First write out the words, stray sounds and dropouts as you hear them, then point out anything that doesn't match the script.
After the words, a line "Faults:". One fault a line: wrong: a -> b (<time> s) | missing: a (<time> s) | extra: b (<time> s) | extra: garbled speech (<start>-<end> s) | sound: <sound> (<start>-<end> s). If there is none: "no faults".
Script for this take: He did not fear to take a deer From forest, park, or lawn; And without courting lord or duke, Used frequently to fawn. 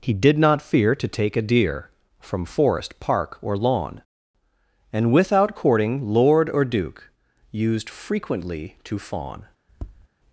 He did not fear to take a deer From forest, park, or lawn; And without courting lord or duke, Used frequently to fawn.
Faults:
sound: tap (9.7-10.1 s)